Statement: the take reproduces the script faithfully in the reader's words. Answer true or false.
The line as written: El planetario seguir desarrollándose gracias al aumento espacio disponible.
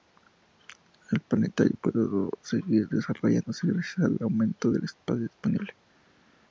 false